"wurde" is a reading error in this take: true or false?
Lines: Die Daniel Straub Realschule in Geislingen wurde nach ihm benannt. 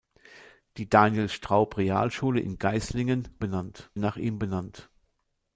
true